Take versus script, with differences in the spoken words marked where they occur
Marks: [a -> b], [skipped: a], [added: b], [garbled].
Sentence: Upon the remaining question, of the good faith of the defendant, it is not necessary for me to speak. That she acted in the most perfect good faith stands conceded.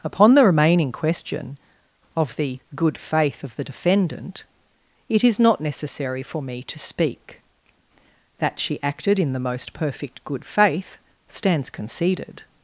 Upon the remaining question, of the good faith of the defendant, it is not necessary for me to speak. That she acted in the most perfect good faith stands conceded.